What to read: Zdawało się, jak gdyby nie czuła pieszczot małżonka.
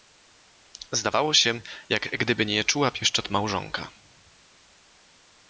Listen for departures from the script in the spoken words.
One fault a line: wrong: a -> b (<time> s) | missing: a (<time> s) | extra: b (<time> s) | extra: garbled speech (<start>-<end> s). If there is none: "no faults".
no faults